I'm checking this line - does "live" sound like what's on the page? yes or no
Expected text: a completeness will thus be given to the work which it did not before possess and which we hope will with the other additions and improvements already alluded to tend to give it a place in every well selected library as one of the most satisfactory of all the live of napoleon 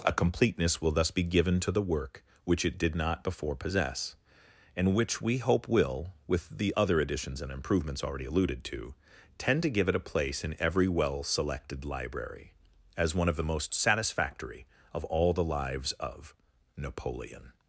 no